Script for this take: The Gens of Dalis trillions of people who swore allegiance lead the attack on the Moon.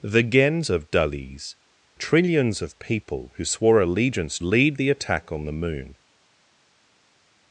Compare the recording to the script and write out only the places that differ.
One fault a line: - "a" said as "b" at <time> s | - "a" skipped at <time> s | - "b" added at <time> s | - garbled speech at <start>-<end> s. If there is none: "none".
none